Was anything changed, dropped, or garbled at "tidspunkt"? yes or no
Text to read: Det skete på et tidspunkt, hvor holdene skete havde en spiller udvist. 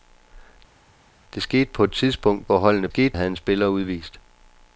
no